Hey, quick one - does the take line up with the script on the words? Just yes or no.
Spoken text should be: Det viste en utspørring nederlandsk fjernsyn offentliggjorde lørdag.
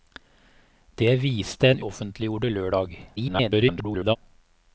no